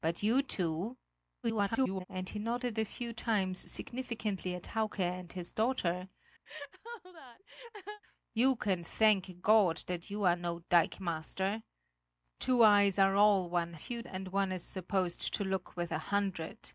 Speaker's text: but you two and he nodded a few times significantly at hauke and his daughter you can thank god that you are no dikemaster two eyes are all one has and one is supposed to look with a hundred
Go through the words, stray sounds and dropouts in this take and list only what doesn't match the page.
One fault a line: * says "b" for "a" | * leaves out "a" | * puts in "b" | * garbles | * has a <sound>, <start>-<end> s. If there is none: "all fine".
* garbles
* has a laugh, 6.5-8.0 s
* says "few" for "has"